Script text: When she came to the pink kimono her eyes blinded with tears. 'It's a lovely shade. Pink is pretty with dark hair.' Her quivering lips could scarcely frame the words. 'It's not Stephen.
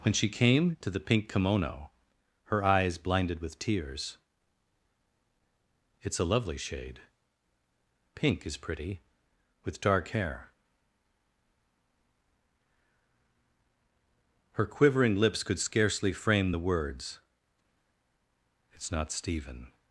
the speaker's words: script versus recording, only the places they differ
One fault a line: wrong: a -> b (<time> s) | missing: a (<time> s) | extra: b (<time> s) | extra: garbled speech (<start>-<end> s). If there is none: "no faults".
no faults